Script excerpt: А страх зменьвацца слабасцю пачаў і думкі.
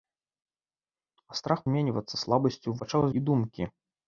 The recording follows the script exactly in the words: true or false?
true